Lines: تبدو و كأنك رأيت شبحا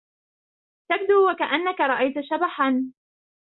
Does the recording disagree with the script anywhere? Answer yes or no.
no